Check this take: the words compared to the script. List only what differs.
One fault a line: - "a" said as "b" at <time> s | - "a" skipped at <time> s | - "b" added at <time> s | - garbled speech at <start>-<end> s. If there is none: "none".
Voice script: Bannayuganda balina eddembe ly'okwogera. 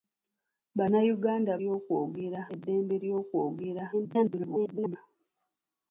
- "balina" said as "ly'okwogera" at 1.6 s
- garbled speech at 3.9-5.0 s